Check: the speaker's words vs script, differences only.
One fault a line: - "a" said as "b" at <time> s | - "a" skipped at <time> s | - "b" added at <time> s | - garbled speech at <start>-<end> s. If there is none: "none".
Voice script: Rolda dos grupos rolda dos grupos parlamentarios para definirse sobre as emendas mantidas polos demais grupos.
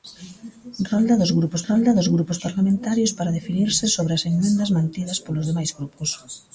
none